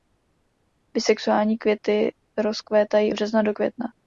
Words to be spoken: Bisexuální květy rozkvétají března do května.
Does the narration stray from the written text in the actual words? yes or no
no